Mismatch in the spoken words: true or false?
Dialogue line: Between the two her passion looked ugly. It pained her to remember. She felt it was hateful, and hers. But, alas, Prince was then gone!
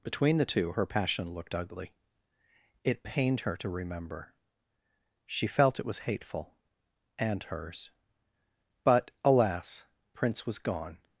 true